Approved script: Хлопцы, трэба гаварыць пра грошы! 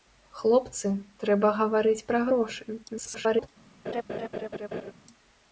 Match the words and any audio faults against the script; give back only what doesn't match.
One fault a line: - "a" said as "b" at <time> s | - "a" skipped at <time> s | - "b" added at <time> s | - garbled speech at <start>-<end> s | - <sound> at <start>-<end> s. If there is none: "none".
- garbled speech at 2.9-3.5 s
- laugh at 3.9-4.9 s